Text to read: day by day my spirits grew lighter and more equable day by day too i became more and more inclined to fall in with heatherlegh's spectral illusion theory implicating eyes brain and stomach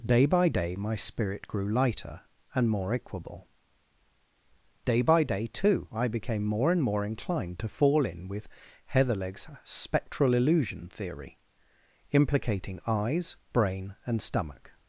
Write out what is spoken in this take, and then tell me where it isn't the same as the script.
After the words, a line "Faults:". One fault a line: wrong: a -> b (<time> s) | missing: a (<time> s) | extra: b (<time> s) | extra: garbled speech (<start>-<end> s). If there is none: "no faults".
day by day my spirit grew lighter and more equable day by day too i became more and more inclined to fall in with heatherlegh's spectral illusion theory implicating eyes brain and stomach
Faults:
wrong: spirits -> spirit (0.9 s)